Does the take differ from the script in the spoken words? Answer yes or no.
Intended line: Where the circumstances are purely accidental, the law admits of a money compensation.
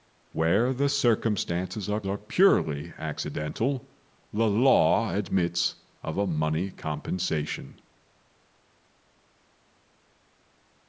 yes